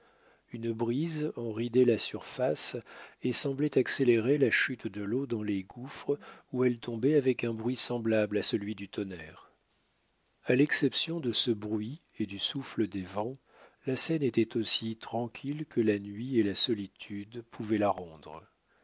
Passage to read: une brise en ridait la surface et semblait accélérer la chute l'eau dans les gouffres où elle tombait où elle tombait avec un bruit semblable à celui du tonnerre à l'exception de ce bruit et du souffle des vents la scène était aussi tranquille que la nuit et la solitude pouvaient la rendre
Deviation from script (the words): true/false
true